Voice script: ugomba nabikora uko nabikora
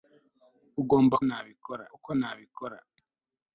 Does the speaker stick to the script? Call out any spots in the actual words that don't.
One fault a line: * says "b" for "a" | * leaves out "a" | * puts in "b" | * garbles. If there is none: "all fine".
all fine